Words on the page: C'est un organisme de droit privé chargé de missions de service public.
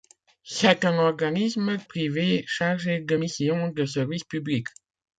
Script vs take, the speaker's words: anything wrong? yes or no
yes